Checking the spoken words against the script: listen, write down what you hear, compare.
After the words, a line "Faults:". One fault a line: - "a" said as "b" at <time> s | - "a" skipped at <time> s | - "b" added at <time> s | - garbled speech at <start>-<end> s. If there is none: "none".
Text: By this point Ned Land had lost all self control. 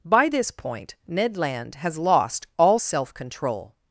By this point Ned Land has lost all self control.
Faults:
- "had" said as "has" at 1.8 s